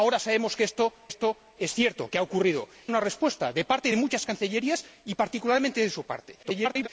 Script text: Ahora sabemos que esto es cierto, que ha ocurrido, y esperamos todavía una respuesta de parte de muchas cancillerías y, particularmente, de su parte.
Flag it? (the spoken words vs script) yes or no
yes